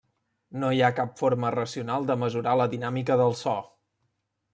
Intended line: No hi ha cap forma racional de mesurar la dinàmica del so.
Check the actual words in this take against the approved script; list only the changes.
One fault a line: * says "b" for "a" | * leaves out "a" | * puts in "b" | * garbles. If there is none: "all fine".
all fine